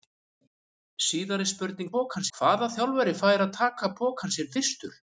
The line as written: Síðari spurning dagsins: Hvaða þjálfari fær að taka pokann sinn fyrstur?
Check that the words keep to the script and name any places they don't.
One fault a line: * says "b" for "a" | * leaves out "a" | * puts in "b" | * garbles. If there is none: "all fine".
* says "pokann" for "dagsins"